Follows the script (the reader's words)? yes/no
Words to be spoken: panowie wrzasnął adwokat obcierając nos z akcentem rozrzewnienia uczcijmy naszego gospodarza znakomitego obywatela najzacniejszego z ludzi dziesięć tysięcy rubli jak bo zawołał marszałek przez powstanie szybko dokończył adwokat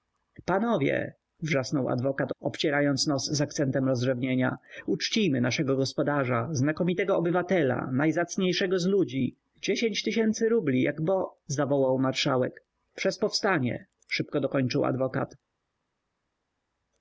yes